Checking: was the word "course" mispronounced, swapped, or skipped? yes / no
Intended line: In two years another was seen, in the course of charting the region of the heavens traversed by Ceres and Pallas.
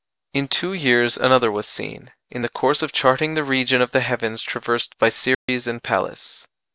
no